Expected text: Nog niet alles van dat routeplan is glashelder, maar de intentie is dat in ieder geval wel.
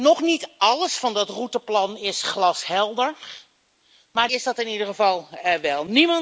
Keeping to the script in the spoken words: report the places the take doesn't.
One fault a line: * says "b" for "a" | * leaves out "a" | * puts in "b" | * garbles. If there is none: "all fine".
* leaves out "de intentie"